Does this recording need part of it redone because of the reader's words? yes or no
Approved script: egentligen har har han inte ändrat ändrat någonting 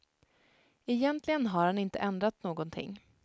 yes